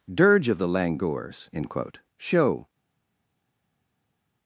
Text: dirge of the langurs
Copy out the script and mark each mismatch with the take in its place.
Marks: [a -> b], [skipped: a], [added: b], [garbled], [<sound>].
dirge of the langurs [added: end quote show]